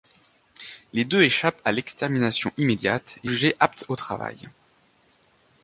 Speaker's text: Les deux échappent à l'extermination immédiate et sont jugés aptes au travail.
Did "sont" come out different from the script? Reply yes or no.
yes